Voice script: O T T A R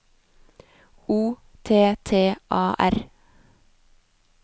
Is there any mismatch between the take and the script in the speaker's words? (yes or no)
no